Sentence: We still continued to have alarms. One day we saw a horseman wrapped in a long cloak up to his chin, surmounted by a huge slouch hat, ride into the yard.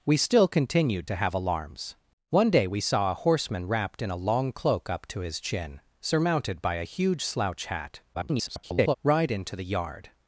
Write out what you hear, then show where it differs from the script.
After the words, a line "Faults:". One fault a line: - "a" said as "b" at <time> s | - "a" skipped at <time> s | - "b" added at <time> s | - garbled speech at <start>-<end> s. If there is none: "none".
We still continued to have alarms. One day we saw a horseman wrapped in a long cloak up to his chin, surmounted by a huge slouch hat, [garbled] ride into the yard.
Faults:
- garbled speech at 8.1-9.0 s